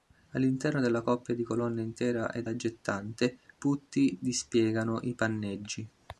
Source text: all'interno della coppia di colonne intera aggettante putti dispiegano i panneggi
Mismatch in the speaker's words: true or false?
true